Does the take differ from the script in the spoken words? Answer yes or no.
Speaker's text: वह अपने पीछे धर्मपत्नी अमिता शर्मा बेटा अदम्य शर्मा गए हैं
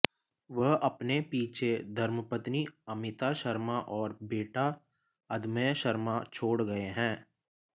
yes